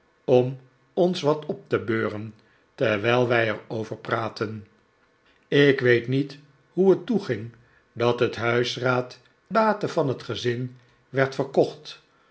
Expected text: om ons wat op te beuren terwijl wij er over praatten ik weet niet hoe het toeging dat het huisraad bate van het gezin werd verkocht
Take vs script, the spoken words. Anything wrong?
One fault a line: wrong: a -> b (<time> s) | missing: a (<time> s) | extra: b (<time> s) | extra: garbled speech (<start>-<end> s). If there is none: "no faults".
no faults